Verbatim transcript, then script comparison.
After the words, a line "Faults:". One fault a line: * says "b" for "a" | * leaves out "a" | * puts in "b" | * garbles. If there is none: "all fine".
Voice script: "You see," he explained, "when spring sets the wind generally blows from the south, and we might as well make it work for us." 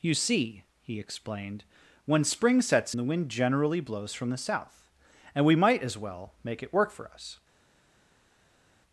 "You see," he explained, "when spring sets the wind generally blows from the south, and we might as well make it work for us."
Faults:
all fine